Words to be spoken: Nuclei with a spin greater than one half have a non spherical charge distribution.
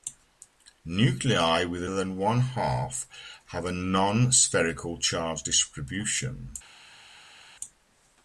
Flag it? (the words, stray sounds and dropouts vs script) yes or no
yes